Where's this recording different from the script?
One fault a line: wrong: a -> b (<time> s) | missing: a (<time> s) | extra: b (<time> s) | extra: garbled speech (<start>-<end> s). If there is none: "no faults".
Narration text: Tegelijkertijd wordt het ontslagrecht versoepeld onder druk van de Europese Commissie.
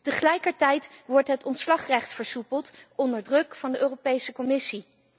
no faults